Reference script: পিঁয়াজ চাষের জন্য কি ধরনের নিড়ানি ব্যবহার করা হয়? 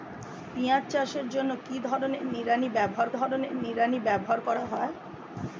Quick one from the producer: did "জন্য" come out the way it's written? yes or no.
yes